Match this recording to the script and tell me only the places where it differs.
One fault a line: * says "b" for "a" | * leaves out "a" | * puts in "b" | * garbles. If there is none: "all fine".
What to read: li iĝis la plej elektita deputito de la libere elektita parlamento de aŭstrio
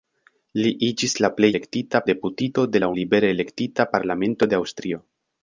all fine